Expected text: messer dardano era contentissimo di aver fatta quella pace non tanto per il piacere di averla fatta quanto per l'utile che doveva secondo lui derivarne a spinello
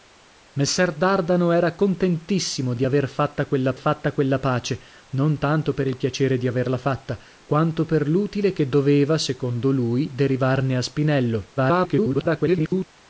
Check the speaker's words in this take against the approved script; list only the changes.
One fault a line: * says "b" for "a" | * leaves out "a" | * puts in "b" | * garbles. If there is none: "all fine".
* puts in "fatta quella"
* garbles